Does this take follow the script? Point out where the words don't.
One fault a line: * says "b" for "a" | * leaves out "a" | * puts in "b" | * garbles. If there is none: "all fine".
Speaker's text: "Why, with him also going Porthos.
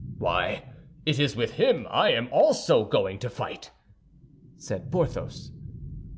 * puts in "it is"
* puts in "I am"
* puts in "to fight said"